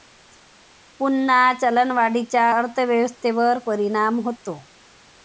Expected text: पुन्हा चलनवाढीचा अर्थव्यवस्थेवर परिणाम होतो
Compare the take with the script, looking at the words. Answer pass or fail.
pass